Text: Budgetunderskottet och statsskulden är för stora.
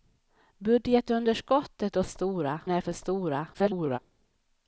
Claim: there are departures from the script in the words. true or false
true